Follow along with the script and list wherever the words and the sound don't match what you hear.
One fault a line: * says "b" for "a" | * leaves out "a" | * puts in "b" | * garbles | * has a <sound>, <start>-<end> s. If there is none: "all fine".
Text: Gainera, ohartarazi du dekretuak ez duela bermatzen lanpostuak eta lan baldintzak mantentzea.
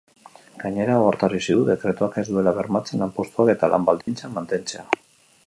* has a dropout, 4.0-4.1 s